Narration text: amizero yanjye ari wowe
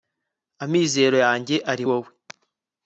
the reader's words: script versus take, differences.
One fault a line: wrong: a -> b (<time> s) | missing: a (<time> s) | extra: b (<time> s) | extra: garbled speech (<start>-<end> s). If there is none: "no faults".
no faults